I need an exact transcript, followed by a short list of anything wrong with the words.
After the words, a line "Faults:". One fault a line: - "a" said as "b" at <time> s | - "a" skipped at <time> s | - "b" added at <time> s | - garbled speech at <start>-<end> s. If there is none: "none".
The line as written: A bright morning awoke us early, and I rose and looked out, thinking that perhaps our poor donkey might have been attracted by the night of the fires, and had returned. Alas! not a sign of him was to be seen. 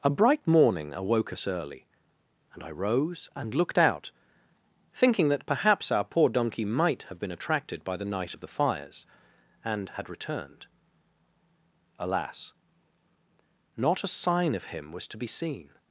A bright morning awoke us early, and I rose and looked out, thinking that perhaps our poor donkey might have been attracted by the night of the fires, and had returned. Alas! not a sign of him was to be seen.
Faults:
none